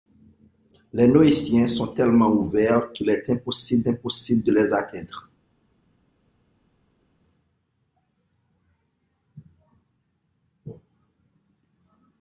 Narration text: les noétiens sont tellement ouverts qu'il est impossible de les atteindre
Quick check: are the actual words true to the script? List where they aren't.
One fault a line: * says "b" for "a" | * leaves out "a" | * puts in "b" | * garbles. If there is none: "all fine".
* puts in "impossible"